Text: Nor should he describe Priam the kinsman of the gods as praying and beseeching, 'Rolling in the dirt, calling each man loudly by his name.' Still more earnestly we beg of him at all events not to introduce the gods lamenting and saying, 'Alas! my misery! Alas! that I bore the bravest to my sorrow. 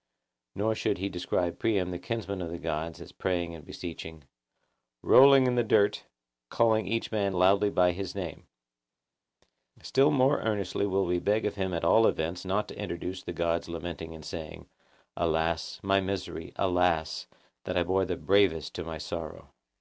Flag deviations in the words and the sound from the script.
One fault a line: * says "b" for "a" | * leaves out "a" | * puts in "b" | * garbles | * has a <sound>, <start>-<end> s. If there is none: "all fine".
* puts in "will"